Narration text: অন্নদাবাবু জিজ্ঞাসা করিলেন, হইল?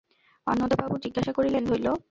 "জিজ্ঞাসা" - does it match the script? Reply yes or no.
yes